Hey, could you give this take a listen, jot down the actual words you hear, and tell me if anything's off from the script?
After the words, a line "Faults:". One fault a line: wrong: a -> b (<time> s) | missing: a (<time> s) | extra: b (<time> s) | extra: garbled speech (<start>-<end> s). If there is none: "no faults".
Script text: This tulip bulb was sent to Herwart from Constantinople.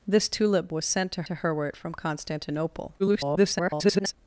This tulip was sent to to Herwart from Constantinople. [garbled]
Faults:
missing: bulb (0.7 s)
extra: to (1.2 s)
extra: garbled speech (3.0-4.1 s)